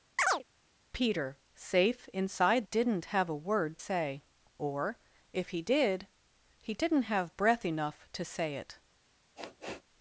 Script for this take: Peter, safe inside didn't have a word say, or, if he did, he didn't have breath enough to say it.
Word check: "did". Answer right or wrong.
right